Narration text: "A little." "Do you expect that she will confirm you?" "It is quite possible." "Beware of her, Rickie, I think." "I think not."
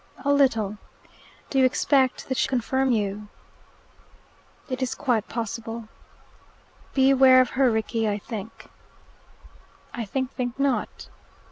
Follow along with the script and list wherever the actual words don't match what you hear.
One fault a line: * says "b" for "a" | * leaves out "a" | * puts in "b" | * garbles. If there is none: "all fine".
* leaves out "will"
* puts in "think"